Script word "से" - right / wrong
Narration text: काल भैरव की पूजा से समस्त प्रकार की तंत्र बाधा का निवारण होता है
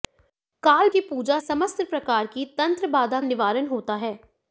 wrong